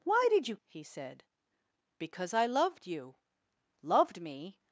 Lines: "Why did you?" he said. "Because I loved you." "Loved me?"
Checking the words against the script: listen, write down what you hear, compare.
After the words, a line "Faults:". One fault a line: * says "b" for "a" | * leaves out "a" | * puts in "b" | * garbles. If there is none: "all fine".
"Why did you?" he said. "Because I loved you." "Loved me?"
Faults:
all fine